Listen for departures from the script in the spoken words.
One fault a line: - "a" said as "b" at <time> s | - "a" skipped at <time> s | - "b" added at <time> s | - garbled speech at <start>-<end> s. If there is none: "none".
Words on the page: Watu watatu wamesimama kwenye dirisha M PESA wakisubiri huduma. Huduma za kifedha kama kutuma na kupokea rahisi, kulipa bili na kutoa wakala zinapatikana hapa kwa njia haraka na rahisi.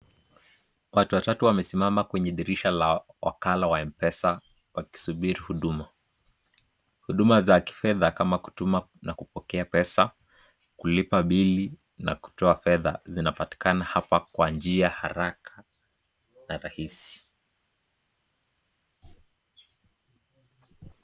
- "la wakala wa" added at 2.7 s
- "rahisi" said as "pesa" at 9.6 s
- "wakala" said as "fedha" at 12.5 s